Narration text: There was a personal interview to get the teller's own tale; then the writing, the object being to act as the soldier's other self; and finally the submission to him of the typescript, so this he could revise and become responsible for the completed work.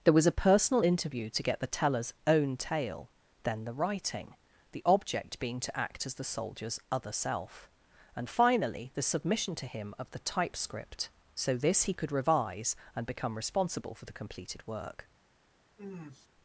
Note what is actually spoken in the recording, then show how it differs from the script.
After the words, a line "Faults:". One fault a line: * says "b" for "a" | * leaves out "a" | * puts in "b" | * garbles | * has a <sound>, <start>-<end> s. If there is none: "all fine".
There was a personal interview to get the teller's own tale; then the writing, the object being to act as the soldier's other self; and finally the submission to him of the typescript, so this he could revise and become responsible for the completed work.
Faults:
* has a sniff, 15.8-16.3 s